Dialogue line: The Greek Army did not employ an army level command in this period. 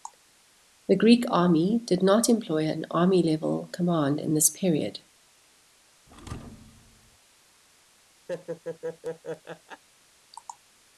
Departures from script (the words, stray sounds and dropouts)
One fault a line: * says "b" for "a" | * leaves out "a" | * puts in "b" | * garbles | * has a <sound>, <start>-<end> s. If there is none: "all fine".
* has a thud, 6.1-7.2 s
* has a laugh, 8.3-9.8 s